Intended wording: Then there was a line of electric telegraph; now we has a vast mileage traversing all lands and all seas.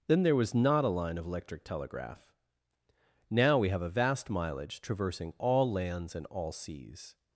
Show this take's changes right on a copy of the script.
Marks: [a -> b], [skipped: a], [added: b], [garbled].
Then there was [added: not] a line of electric telegraph; now we [has -> have] a vast mileage traversing all lands and all seas.